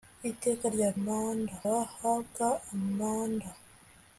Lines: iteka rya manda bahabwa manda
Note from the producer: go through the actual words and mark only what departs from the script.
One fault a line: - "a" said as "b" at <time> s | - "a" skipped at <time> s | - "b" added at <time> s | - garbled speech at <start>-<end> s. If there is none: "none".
none